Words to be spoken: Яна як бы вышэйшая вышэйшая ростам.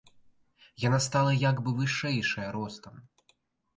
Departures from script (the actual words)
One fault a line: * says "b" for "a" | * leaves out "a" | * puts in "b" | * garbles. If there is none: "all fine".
* puts in "стала"
* leaves out "вышэйшая"